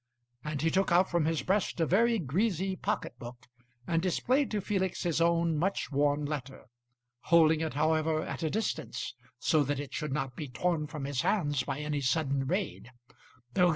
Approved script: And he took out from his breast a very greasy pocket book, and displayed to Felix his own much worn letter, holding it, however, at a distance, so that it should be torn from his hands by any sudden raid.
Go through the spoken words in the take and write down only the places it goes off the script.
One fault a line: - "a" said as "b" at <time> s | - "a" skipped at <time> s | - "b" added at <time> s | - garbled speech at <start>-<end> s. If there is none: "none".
- "not" added at 10.1 s